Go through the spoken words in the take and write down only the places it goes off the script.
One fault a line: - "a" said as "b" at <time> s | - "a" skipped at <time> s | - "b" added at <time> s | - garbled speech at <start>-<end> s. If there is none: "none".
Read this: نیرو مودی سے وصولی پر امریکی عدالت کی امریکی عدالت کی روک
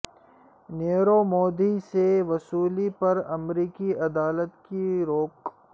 - "امریکی عدالت کی" skipped at 4.8 s